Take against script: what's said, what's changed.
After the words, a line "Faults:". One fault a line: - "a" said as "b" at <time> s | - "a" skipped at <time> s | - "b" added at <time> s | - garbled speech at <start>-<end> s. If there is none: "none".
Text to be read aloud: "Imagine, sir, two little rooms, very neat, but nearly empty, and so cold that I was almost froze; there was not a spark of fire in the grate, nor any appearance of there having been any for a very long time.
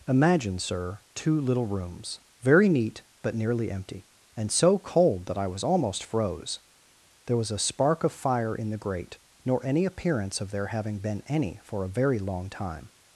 "Imagine, sir, two little rooms, very neat, but nearly empty, and so cold that I was almost froze; there was a spark of fire in the grate, nor any appearance of there having been any for a very long time.
Faults:
- "not" skipped at 7.5 s